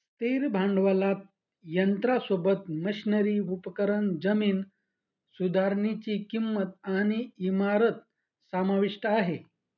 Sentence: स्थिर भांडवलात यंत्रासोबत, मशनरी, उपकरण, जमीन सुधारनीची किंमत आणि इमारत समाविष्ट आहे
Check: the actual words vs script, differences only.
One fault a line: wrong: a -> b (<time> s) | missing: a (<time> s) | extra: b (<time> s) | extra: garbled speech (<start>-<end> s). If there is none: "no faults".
no faults